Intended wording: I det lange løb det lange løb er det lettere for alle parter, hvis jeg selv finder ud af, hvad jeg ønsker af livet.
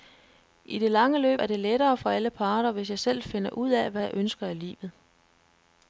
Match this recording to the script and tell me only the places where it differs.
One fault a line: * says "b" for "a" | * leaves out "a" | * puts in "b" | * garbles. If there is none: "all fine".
* leaves out "det lange løb"